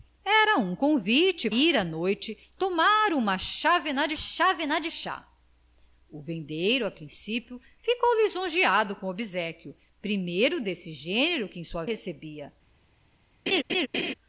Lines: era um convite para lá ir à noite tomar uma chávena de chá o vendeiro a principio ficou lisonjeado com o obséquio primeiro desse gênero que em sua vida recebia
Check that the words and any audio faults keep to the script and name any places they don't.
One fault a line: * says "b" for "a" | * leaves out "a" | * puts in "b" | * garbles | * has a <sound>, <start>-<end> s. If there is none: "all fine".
* leaves out "para lá"
* puts in "chávena de"
* leaves out "vida"
* has a laugh, 13.5-14.1 s